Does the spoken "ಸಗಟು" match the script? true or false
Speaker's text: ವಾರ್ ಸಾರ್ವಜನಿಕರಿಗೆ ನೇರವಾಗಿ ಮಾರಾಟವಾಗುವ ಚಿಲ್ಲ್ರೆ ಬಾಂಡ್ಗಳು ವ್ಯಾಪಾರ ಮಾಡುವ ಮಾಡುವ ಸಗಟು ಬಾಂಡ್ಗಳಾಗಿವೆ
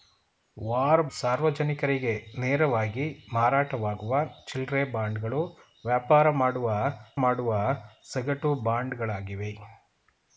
true